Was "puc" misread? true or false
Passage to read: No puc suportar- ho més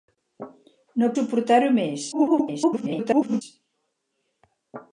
true